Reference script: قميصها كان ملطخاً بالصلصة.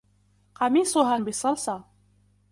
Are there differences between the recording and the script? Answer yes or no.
yes